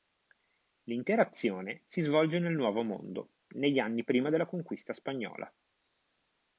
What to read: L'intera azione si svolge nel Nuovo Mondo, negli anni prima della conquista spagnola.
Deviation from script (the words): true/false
false